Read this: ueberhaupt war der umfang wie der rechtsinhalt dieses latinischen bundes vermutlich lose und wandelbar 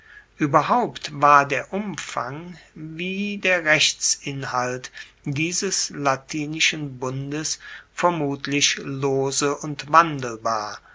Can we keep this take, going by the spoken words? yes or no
yes